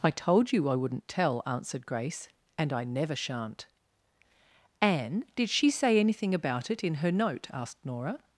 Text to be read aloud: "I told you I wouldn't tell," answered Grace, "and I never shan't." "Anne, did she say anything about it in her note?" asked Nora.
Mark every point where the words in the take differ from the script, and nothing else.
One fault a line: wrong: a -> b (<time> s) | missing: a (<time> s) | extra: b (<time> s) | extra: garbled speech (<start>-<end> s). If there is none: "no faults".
no faults